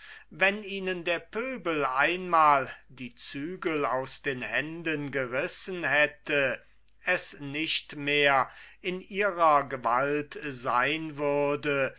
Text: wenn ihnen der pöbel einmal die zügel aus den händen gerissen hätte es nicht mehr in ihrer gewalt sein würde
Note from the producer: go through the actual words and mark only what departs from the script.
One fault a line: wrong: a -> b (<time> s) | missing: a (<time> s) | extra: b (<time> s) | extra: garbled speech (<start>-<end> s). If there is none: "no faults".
no faults